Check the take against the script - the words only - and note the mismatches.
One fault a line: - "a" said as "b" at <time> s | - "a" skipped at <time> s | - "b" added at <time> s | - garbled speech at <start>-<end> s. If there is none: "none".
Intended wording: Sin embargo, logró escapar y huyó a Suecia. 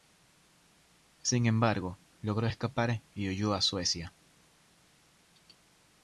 none